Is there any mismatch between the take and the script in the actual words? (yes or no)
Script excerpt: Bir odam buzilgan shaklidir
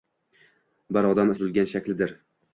no